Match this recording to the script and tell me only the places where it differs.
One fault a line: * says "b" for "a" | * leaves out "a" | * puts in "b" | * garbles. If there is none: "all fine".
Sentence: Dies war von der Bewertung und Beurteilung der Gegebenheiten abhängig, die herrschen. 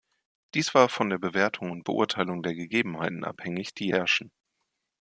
all fine